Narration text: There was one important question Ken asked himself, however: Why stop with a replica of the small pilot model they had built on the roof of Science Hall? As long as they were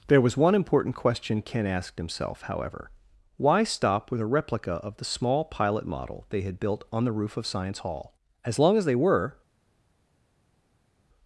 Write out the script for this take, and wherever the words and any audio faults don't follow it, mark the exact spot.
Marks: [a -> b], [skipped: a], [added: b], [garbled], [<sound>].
There was one important question Ken asked himself, however: Why stop with a replica of the small pilot model they had built on the roof of Science Hall? As long as they were